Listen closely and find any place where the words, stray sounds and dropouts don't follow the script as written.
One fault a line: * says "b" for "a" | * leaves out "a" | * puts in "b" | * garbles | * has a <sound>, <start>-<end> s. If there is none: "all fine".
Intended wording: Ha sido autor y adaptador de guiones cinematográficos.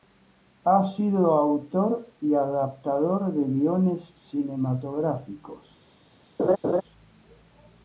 * has a laugh, 6.4-6.8 s